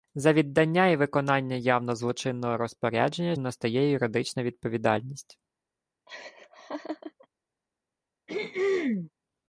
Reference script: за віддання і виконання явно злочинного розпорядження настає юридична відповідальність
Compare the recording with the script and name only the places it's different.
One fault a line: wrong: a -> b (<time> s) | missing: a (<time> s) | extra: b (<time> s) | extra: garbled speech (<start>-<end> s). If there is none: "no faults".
no faults